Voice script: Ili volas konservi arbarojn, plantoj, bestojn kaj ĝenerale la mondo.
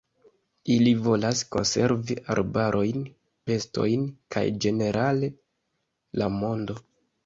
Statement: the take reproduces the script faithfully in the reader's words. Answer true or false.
false